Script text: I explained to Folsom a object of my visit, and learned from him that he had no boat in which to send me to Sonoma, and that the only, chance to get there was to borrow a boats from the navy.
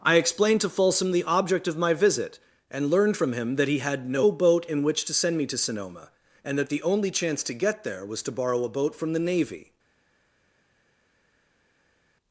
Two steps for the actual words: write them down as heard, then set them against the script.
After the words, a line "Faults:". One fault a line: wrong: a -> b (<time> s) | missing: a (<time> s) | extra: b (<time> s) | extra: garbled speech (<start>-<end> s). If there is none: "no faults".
I explained to Folsom the object of my visit, and learned from him that he had no boat in which to send me to Sonoma, and that the only, chance to get there was to borrow a boat from the navy.
Faults:
wrong: a -> the (1.1 s)
wrong: boats -> boat (8.7 s)